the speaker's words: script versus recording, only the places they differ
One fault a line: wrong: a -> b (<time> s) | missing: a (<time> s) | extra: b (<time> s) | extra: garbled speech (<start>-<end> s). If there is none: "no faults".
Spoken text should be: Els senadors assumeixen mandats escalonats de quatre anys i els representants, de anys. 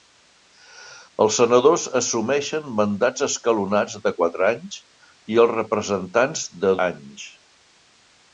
no faults